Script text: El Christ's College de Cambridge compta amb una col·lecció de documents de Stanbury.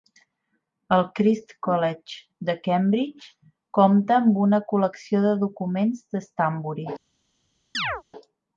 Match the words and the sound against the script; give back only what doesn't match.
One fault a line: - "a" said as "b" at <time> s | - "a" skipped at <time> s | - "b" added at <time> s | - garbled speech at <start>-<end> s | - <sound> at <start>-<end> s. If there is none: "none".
- chirp at 7.7-8.0 s